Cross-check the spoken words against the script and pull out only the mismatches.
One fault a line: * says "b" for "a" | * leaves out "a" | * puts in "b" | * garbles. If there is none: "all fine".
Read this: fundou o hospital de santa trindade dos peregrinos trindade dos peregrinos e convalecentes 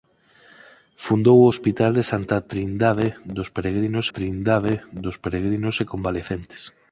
all fine